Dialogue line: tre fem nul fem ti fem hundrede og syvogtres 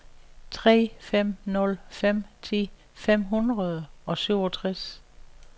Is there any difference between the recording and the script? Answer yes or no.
no